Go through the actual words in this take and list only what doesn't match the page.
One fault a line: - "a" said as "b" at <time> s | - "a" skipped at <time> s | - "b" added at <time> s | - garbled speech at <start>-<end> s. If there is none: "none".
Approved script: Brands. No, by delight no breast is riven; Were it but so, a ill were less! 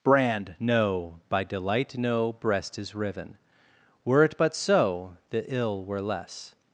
- "Brands" said as "Brand" at 0.0 s
- "a" said as "the" at 5.3 s